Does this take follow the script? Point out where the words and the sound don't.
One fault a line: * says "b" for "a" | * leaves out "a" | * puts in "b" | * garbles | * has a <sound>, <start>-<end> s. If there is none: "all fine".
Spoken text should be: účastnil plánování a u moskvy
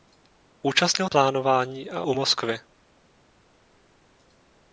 all fine